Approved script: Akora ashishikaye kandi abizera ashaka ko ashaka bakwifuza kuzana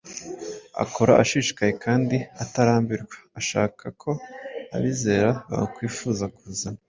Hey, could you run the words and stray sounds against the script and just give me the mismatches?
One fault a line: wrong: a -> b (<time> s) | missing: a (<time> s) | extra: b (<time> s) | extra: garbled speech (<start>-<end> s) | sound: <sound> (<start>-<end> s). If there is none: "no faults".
wrong: abizera -> atarambirwa (2.4 s)
wrong: ashaka -> abizera (4.8 s)